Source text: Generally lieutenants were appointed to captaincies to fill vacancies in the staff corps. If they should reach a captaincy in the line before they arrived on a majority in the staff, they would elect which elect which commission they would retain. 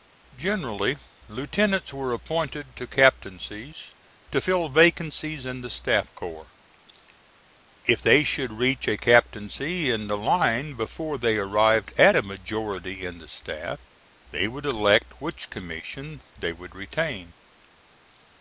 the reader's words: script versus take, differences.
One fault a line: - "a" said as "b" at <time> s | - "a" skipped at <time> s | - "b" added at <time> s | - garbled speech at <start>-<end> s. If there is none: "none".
- "on" said as "at" at 12.0 s
- "elect which" skipped at 15.5 s